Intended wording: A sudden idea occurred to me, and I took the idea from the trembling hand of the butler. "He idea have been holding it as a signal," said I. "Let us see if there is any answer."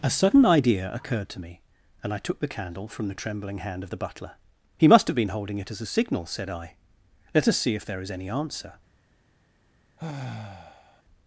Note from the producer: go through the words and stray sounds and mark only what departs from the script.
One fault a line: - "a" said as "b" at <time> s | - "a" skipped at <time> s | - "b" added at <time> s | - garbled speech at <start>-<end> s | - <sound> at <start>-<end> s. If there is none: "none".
- "idea" said as "candle" at 2.5 s
- "idea" said as "must" at 4.9 s
- sigh at 10.0-11.0 s